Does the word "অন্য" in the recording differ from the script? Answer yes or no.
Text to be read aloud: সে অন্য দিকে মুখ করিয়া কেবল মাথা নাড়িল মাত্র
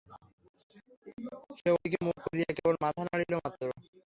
yes